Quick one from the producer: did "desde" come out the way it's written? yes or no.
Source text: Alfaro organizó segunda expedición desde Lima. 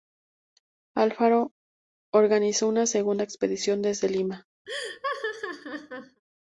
yes